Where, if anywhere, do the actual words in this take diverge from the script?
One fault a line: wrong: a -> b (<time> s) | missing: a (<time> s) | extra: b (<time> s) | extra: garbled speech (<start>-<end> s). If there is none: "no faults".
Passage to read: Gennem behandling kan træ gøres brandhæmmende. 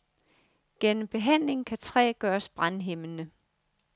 no faults